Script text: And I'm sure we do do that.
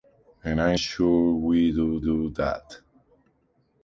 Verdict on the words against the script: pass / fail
pass